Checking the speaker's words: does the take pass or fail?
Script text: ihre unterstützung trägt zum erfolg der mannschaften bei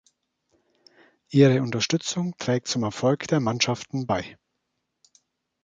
pass